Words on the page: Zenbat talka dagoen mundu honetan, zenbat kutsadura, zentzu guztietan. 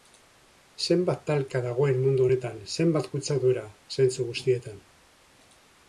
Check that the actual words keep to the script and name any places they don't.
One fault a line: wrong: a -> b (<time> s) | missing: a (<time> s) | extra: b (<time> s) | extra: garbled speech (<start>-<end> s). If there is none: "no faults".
no faults